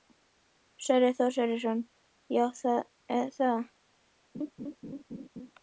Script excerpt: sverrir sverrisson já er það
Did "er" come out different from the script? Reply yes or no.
no